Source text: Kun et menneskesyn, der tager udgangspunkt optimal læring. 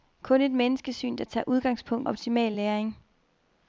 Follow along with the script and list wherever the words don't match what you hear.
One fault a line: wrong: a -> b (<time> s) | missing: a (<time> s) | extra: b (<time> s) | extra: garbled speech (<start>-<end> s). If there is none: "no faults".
no faults